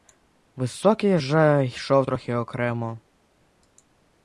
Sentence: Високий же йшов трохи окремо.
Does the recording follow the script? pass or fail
pass